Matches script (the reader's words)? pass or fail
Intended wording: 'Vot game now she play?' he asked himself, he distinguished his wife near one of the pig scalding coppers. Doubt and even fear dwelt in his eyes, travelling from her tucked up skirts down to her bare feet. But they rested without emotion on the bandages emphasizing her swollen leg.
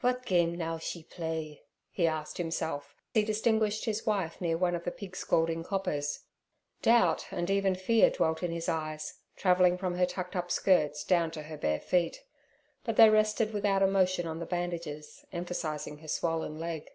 pass